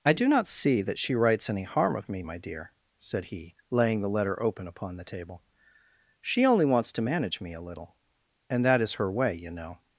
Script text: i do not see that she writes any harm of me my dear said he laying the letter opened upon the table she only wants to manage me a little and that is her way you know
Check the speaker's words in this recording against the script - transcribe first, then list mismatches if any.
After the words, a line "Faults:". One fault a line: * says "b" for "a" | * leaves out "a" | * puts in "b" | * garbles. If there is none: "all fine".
i do not see that she writes any harm of me my dear said he laying the letter open upon the table she only wants to manage me a little and that is her way you know
Faults:
* says "open" for "opened"